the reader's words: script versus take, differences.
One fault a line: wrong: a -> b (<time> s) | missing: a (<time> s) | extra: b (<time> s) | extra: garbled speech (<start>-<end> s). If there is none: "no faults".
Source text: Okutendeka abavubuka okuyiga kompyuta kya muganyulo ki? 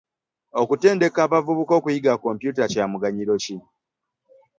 no faults